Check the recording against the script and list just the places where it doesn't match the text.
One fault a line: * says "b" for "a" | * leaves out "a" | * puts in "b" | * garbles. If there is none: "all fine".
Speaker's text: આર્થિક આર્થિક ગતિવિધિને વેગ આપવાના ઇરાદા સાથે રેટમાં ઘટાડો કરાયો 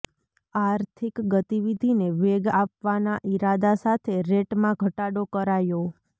* leaves out "આર્થિક"